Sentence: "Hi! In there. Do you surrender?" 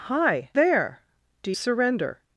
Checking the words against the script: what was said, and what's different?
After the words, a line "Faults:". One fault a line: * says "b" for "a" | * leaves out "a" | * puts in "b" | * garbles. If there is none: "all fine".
"Hi! There. Do surrender?"
Faults:
* leaves out "In"
* leaves out "you"